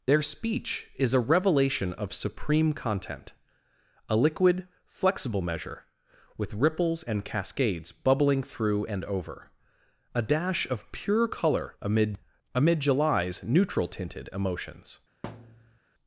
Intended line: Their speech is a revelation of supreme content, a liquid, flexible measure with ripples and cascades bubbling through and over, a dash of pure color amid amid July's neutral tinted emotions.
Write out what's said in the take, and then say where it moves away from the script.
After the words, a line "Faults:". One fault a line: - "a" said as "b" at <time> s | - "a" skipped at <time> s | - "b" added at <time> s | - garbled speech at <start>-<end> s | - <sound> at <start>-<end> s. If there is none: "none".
Their speech is a revelation of supreme content, a liquid, flexible measure with ripples and cascades bubbling through and over, a dash of pure color amid amid July's neutral tinted emotions.
Faults:
- thud at 15.2-15.8 s